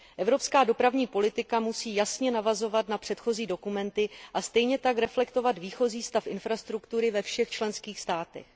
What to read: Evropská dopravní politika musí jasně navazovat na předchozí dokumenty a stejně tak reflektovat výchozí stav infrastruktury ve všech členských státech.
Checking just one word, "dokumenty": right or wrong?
right